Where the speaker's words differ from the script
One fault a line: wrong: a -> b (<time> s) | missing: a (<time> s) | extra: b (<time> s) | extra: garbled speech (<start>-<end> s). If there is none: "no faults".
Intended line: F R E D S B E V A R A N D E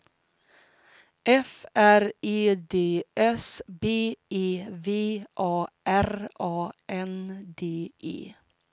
no faults